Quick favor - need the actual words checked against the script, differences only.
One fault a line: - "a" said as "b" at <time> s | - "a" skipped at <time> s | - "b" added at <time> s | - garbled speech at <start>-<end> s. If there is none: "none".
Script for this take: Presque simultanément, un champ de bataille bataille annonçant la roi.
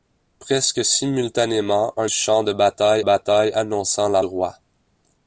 none